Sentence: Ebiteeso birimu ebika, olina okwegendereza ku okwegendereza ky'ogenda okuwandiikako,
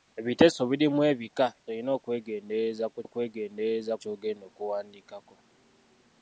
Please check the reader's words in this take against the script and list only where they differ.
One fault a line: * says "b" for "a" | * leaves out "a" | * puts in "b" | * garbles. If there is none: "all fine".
all fine